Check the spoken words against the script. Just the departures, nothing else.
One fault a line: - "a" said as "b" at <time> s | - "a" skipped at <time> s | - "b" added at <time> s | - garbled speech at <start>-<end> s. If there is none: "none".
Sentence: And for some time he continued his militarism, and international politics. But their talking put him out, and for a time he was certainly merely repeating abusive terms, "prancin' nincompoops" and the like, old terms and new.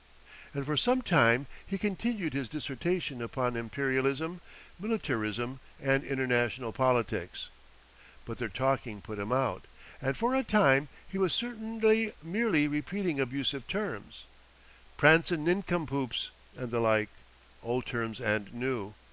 - "dissertation upon Imperialism" added at 2.5 s